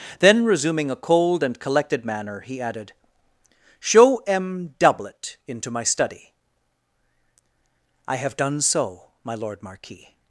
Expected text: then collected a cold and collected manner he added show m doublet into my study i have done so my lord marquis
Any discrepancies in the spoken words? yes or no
yes